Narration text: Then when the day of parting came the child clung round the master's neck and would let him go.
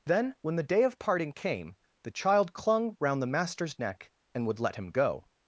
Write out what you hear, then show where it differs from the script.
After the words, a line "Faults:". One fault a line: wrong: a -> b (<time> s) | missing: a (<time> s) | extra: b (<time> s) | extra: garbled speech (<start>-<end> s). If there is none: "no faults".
Then when the day of parting came the child clung round the master's neck and would let him go.
Faults:
no faults